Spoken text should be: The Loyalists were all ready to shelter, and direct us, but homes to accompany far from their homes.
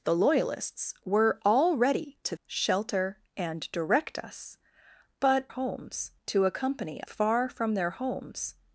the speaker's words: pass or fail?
pass